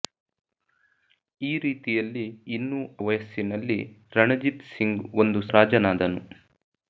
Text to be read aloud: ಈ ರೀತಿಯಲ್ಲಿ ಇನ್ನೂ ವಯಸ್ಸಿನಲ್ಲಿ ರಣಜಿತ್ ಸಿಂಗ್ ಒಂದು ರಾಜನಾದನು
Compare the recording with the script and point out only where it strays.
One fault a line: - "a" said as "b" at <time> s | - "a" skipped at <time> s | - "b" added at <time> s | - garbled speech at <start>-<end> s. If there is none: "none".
none